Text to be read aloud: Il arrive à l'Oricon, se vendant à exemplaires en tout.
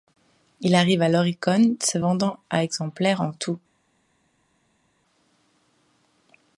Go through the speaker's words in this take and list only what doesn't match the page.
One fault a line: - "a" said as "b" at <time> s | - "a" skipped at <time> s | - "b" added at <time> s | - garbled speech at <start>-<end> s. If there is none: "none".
none